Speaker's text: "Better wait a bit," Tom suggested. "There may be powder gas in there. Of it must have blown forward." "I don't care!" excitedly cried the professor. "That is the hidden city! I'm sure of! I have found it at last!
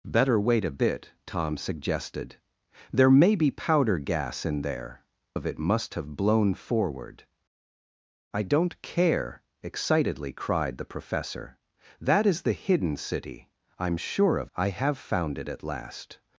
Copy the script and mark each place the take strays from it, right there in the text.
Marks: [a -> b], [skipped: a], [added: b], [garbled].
"Better wait a bit," Tom suggested. "There may be powder gas in there. Of it must have blown forward." "I don't care!" excitedly cried the professor. "That is the hidden city! I'm sure of! I have found it at last!